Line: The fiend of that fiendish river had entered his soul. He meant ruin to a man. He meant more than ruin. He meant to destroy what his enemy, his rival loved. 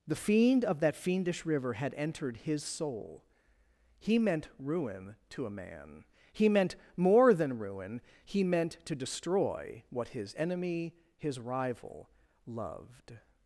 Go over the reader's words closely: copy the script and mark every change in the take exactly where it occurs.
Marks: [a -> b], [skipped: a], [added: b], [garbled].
The fiend of that fiendish river had entered his soul. He meant ruin to a man. He meant more than ruin. He meant to destroy what his enemy, his rival loved.